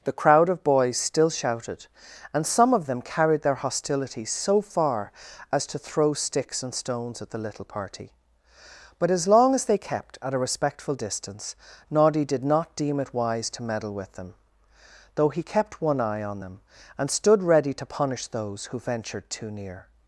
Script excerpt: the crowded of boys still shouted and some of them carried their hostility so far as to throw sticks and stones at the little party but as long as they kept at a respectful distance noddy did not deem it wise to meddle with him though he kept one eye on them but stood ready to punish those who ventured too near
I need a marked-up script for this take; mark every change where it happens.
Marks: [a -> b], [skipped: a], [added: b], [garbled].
the [crowded -> crowd] of boys still shouted and some of them carried their hostility so far as to throw sticks and stones at the little party but as long as they kept at a respectful distance noddy did not deem it wise to meddle with [him -> them] though he kept one eye on them [but -> and] stood ready to punish those who ventured too near